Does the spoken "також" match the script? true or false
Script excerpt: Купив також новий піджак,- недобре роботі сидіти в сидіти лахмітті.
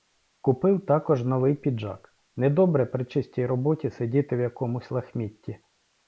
true